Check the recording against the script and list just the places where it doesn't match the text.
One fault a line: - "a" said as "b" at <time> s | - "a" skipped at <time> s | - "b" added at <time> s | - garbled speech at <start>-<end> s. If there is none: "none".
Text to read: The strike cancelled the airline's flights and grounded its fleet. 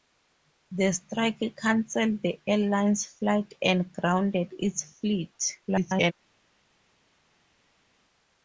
- garbled speech at 5.7-6.1 s